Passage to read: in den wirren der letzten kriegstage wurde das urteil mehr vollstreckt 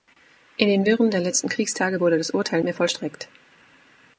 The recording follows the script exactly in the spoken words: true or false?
true